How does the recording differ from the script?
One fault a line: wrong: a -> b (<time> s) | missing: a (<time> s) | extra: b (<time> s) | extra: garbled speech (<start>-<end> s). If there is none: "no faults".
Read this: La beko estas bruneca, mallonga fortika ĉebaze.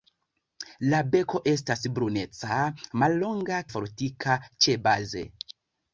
no faults